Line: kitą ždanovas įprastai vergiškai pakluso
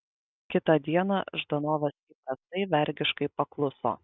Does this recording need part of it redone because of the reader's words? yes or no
yes